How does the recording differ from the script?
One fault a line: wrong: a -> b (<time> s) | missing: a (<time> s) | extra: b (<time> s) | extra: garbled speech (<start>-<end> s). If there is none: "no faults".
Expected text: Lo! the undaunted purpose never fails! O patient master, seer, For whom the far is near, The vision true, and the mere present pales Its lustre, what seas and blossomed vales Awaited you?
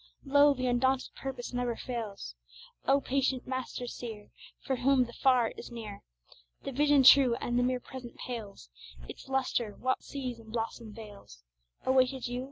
no faults